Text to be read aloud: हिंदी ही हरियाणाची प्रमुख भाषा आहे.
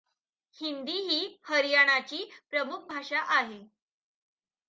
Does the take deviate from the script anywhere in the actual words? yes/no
no